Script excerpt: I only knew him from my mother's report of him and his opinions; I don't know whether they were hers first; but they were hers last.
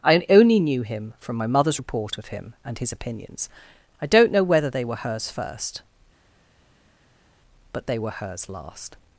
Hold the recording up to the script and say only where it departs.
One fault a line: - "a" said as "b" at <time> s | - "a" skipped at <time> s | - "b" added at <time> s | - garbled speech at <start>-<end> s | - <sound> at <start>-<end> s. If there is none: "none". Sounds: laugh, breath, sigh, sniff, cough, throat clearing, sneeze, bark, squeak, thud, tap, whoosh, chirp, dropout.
none